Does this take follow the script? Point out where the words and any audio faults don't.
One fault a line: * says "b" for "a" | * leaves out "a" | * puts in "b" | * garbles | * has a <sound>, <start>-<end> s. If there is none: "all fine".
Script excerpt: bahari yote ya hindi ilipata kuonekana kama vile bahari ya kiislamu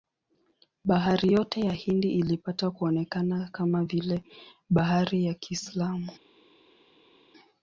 all fine